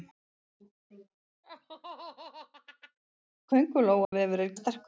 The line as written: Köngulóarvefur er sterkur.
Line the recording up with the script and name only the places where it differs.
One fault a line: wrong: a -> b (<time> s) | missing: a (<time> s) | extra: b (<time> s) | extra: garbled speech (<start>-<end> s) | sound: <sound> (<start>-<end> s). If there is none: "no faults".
sound: laugh (1.4-3.0 s)
sound: dropout (4.0-4.1 s)